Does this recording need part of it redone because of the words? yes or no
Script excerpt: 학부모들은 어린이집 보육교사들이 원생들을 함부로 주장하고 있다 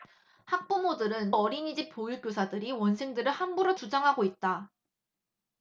no